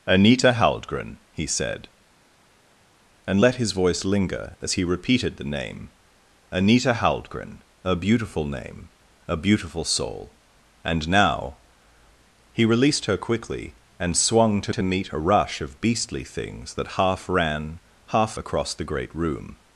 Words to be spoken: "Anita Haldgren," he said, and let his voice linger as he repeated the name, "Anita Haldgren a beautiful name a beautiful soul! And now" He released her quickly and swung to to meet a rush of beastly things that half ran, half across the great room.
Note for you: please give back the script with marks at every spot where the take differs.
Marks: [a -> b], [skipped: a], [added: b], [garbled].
"Anita Haldgren," he said, and let his voice linger as he repeated the name, "Anita Haldgren a beautiful name a beautiful soul! And now" He released her quickly and swung to to meet a rush of beastly things that half ran, half across the great room.